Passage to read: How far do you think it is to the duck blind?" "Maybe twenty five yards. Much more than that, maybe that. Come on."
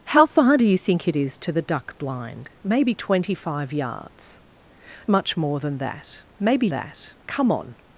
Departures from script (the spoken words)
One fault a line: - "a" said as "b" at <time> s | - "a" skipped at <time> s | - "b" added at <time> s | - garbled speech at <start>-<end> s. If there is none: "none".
none